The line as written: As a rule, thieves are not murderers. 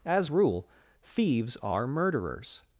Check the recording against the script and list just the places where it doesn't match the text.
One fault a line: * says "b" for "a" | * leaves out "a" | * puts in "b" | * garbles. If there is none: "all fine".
* leaves out "a"
* leaves out "not"